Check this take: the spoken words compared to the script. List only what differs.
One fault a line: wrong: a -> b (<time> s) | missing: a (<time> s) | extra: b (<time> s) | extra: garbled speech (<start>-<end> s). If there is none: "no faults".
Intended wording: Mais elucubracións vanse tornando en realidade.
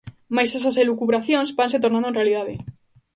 extra: esas (0.6 s)